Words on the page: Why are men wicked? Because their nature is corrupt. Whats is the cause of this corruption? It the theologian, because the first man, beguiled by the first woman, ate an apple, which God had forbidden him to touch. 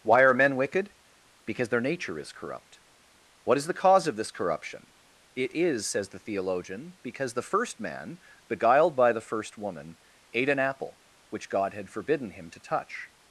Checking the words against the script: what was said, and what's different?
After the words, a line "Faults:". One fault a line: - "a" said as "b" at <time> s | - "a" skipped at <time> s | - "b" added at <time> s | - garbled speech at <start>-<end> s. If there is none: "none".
Why are men wicked? Because their nature is corrupt. What is the cause of this corruption? It is, says the theologian, because the first man, beguiled by the first woman, ate an apple, which God had forbidden him to touch.
Faults:
- "Whats" said as "What" at 3.4 s
- "is says" added at 5.5 s